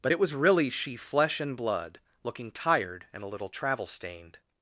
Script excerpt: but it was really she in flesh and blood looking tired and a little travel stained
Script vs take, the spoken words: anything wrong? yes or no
yes